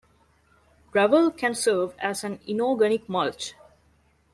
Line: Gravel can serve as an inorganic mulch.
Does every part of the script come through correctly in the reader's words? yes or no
yes